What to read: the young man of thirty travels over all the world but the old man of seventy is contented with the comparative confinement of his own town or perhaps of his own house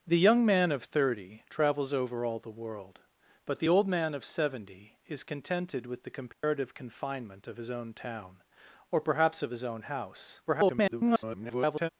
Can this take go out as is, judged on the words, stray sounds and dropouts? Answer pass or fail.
fail